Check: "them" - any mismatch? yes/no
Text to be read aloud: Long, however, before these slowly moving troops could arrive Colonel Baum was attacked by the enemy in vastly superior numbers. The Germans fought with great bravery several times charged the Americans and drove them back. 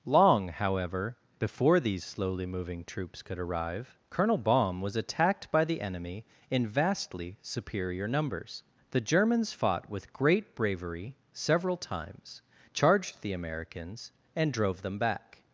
no